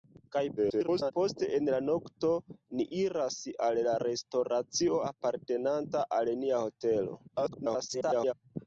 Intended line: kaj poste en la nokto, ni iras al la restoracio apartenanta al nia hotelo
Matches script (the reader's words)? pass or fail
fail